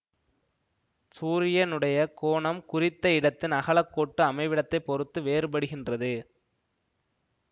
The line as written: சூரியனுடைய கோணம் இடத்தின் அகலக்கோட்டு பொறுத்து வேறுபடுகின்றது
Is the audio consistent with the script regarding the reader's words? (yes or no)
no